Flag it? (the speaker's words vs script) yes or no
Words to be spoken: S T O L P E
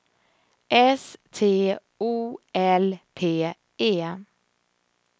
no